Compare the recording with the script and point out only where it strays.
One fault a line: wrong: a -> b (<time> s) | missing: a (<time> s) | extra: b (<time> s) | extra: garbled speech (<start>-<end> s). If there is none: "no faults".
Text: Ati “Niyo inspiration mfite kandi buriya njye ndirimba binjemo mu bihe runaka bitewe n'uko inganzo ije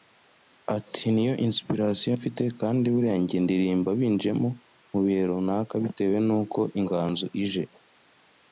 no faults